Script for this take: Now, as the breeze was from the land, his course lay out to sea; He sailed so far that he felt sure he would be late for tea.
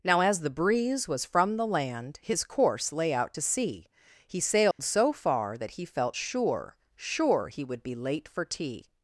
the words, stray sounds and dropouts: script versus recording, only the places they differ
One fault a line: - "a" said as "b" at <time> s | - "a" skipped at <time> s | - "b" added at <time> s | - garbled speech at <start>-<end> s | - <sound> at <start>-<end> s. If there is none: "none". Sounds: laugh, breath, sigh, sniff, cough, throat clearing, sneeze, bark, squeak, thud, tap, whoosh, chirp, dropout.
- dropout at 4.7-4.8 s
- "sure" added at 6.9 s